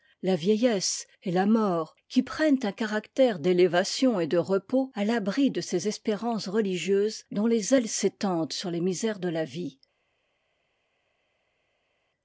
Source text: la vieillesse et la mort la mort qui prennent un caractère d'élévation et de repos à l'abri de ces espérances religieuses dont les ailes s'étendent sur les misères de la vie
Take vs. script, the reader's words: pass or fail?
fail